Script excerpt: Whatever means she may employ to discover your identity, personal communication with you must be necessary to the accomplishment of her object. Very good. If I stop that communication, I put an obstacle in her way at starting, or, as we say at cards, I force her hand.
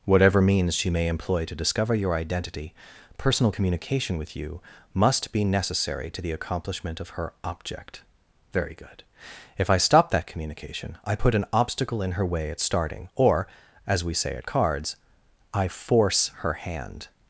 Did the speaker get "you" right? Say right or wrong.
right